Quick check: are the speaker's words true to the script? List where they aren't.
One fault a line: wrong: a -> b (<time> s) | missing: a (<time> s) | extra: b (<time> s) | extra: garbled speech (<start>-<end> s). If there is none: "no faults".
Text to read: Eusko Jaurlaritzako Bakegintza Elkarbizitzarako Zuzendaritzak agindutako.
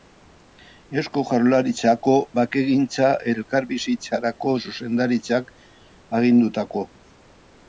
no faults